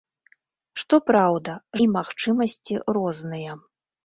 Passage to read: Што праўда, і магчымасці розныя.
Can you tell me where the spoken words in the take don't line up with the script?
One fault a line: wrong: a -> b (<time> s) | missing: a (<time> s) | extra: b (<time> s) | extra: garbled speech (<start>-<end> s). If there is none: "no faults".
no faults